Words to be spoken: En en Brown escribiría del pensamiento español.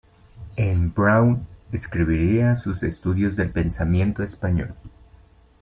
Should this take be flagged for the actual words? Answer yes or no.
yes